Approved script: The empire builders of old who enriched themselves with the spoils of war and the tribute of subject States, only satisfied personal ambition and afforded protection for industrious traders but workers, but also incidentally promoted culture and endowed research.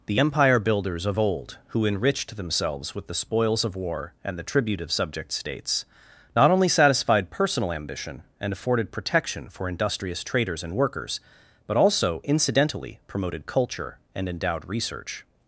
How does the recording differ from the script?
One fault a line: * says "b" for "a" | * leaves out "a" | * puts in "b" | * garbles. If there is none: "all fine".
* puts in "not"
* says "and" for "but"